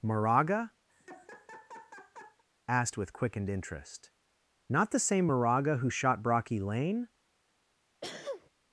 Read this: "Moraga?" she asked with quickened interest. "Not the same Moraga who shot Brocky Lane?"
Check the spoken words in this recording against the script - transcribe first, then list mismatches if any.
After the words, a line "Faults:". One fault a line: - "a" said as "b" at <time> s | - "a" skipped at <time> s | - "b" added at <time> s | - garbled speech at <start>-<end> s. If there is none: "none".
"Moraga?" asked with quickened interest. "Not the same Moraga who shot Brocky Lane?"
Faults:
- "she" skipped at 0.7 s